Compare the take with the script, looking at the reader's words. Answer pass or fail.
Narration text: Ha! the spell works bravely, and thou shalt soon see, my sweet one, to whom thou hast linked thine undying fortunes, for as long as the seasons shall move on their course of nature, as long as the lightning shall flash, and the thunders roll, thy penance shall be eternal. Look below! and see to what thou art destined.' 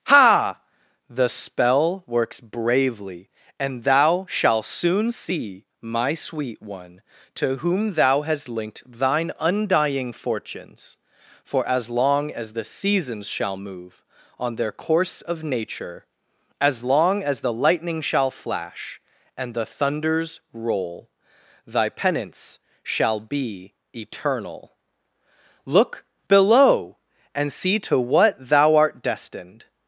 pass